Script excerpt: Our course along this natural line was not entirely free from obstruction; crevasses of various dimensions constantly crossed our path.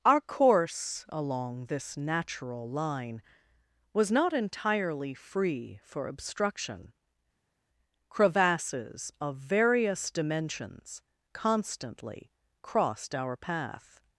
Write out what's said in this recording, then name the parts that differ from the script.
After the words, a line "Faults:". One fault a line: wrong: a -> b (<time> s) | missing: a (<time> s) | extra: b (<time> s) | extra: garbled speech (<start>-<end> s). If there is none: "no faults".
Our course along this natural line was not entirely free for obstruction; crevasses of various dimensions constantly crossed our path.
Faults:
wrong: from -> for (5.8 s)